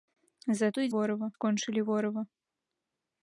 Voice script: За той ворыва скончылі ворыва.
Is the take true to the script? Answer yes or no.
yes